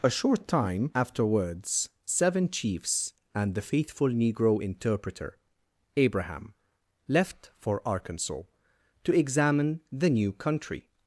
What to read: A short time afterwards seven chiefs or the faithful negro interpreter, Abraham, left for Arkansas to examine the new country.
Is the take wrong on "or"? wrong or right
wrong